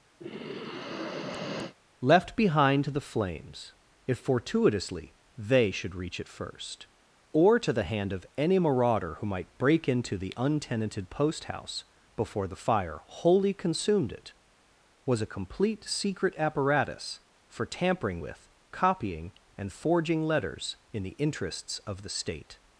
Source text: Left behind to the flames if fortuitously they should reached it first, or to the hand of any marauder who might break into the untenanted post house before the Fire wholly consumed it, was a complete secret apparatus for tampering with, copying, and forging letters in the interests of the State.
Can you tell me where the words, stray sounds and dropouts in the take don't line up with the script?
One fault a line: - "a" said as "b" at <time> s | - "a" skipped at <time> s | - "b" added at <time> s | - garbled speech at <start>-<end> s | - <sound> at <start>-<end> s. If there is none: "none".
- sigh at 0.2-1.7 s
- "reached" said as "reach" at 6.0 s